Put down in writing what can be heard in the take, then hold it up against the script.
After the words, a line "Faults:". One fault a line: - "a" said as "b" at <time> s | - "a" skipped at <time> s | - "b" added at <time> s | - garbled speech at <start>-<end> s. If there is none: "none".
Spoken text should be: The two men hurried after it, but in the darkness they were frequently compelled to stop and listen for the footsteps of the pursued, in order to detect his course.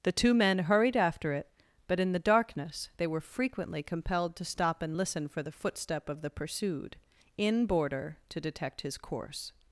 The two men hurried after it, but in the darkness they were frequently compelled to stop and listen for the footstep of the pursued, in border to detect his course.
Faults:
- "footsteps" said as "footstep" at 5.5 s
- "order" said as "border" at 7.7 s